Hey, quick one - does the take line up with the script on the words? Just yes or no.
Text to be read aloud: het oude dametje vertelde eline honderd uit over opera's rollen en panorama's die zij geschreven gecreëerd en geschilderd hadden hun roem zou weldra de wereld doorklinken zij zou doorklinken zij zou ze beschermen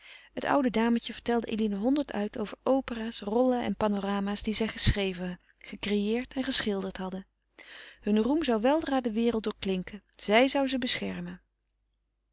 no